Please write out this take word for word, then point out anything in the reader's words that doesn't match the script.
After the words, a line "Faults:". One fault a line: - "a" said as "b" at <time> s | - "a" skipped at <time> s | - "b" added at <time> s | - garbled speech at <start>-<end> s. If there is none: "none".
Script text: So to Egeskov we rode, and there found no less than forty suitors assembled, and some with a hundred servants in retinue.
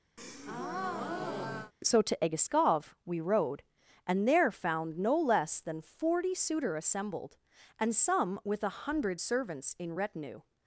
So to Egeskov we rode, and there found no less than forty suitor assembled, and some with a hundred servants in retinue.
Faults:
- "suitors" said as "suitor" at 6.3 s